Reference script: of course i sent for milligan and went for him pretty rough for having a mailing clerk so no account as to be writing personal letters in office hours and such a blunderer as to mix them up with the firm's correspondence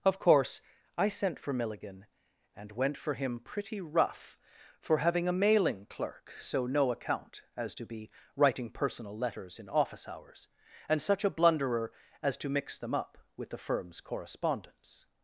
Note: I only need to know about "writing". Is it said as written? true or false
true